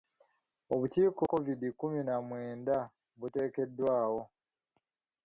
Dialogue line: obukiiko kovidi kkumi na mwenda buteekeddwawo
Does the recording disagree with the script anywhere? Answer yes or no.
no